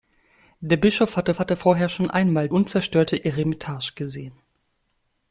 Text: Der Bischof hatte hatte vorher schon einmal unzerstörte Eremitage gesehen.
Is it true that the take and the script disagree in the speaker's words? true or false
false